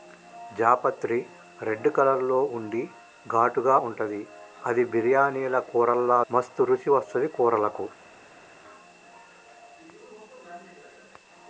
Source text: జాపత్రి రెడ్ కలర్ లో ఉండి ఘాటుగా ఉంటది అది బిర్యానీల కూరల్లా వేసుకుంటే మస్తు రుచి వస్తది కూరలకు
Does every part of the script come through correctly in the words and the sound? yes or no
no